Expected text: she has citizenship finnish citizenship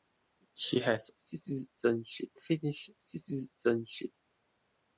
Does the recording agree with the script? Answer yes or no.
yes